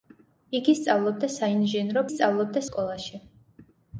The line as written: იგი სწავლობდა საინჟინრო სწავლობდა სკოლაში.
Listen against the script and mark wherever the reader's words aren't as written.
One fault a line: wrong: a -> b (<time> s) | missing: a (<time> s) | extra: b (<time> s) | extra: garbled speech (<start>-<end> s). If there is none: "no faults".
no faults